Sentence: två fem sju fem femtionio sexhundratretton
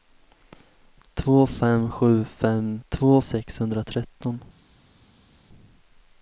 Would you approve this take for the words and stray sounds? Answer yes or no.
no